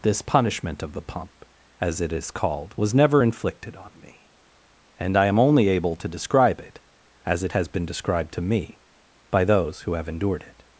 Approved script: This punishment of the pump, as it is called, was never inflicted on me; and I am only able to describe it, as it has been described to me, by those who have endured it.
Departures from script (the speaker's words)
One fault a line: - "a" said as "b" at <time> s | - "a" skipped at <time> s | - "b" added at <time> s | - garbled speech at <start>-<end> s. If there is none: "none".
none